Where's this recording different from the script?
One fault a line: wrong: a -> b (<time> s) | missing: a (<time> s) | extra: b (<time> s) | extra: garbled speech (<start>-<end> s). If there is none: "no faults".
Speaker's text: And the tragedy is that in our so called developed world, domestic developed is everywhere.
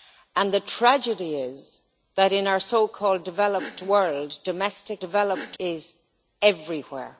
no faults